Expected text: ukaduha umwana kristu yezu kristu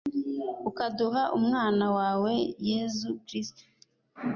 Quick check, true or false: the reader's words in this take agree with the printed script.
false